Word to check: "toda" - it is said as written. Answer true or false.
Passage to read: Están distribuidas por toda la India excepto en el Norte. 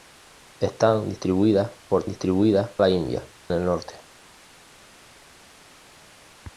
false